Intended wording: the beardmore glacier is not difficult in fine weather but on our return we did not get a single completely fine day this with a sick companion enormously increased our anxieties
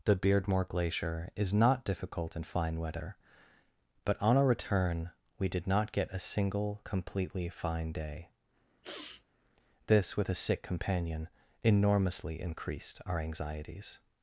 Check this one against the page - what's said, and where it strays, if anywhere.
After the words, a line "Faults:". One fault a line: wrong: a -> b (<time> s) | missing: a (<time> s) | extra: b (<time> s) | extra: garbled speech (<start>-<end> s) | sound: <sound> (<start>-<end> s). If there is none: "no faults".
the beardmore glacier is not difficult in fine weather but on our return we did not get a single completely fine day this with a sick companion enormously increased our anxieties
Faults:
sound: sniff (8.8-9.2 s)